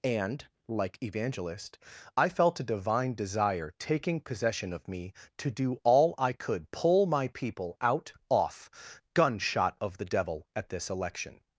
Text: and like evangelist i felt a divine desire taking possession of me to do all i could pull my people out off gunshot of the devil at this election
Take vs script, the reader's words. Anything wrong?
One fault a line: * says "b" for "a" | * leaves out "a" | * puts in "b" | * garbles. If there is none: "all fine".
all fine